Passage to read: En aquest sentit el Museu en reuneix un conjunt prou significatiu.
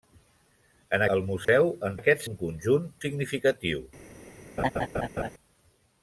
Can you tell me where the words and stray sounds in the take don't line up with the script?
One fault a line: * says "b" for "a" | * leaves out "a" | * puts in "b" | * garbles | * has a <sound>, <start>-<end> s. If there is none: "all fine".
* leaves out "aquest sentit"
* has a dropout, 1.4-1.5 s
* says "aquest" for "reuneix"
* leaves out "prou"
* has a laugh, 4.6-5.3 s